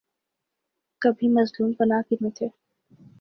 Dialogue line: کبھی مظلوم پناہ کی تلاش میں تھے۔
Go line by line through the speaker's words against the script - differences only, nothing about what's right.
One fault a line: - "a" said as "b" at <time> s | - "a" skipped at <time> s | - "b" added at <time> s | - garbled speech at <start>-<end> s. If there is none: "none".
- "تلاش" skipped at 2.1 s